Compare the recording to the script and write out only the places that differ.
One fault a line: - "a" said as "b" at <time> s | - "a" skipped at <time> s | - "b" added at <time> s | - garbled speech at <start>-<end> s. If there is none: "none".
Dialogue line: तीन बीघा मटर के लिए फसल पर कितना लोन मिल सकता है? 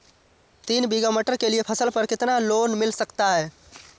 none